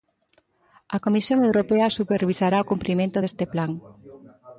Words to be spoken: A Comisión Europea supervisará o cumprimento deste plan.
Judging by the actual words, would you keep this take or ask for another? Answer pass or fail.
pass